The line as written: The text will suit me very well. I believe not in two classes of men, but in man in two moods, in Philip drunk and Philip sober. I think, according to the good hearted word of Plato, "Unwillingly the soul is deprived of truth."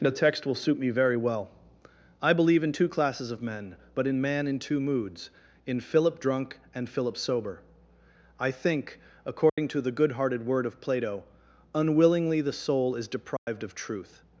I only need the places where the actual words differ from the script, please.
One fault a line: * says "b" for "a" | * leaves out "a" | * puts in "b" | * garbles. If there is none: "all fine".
* leaves out "not"